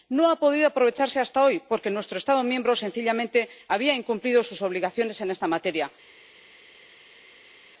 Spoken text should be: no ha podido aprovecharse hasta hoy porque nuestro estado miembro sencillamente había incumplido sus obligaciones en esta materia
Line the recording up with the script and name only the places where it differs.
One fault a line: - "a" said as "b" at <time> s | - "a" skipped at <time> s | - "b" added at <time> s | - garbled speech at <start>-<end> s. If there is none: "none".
none